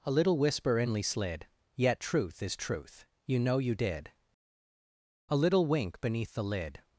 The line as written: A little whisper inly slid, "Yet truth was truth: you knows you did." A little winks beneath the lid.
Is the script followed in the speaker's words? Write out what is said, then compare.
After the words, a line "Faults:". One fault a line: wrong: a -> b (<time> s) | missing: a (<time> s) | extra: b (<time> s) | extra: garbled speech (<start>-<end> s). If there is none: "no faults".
A little whisper inly slid, "Yet truth is truth: you know you did." A little wink beneath the lid.
Faults:
wrong: was -> is (2.4 s)
wrong: knows -> know (3.4 s)
wrong: winks -> wink (5.7 s)